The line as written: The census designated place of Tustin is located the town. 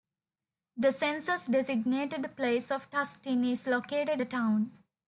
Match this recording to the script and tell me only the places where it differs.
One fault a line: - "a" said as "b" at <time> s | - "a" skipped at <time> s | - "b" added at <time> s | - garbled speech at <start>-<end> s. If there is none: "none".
none